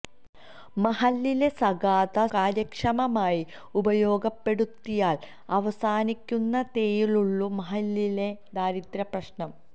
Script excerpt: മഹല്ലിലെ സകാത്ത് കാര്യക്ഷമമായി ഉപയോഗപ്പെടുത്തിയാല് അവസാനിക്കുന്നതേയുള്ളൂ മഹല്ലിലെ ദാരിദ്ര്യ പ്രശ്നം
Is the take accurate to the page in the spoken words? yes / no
yes